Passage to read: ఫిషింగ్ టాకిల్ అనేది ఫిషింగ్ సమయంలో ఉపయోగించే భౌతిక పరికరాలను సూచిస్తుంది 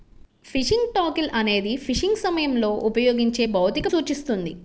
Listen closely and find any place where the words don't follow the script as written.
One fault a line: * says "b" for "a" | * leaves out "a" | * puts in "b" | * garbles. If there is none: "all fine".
* leaves out "పరికరాలను"